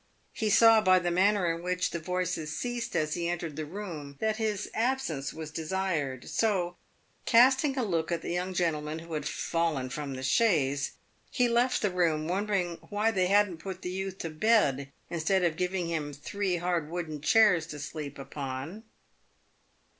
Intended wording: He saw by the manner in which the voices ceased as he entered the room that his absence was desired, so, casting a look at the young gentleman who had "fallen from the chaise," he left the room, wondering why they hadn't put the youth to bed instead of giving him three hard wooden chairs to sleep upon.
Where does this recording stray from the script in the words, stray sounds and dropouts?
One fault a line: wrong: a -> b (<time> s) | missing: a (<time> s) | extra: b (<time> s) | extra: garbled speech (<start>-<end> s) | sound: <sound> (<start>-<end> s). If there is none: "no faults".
no faults